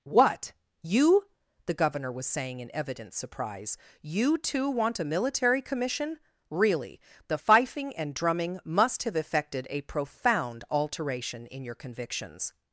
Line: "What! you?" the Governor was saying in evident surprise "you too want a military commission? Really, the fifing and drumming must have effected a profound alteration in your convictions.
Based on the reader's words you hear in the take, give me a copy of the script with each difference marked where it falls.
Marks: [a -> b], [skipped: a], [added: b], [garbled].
"What! you?" the Governor was saying in evident surprise "you too want a military commission? Really, the fifing and drumming must have effected a profound alteration in your convictions.